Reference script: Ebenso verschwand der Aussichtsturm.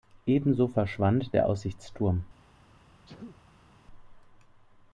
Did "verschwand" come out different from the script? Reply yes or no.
no